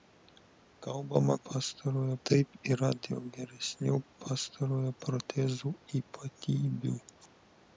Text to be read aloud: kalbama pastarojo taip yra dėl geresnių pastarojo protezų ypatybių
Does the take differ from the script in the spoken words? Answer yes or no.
no